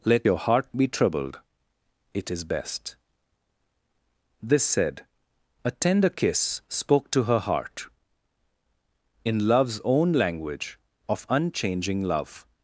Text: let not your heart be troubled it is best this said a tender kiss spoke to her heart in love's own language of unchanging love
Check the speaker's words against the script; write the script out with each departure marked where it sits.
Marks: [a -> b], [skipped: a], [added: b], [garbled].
let [skipped: not] your heart be troubled it is best this said a tender kiss spoke to her heart in love's own language of unchanging love